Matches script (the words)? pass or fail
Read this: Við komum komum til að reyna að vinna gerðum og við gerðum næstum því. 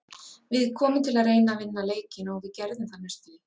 fail